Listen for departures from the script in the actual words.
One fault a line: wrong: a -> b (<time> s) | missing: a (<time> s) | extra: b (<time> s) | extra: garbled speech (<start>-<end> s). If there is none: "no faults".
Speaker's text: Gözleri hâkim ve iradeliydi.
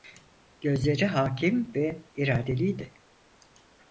no faults